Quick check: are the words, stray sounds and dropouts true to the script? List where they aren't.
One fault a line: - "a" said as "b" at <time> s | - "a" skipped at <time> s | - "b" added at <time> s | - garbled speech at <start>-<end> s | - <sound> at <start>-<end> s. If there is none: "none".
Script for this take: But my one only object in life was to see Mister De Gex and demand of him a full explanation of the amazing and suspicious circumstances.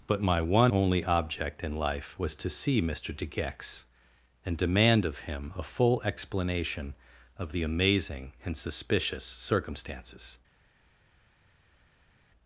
none